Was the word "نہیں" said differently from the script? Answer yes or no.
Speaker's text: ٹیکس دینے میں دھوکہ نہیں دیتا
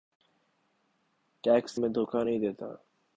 no